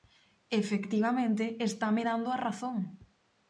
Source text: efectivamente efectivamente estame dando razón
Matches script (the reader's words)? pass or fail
fail